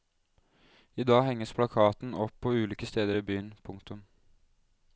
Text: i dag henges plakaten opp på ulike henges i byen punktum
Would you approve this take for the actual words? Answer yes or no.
no